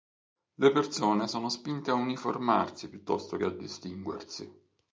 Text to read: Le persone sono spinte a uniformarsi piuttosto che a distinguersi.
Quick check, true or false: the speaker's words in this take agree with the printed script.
true